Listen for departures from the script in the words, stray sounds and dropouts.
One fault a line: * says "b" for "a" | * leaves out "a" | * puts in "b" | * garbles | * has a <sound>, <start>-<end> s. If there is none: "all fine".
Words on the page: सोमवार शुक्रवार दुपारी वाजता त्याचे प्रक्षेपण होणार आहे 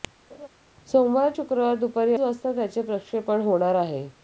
* has a laugh, 0.3-0.5 s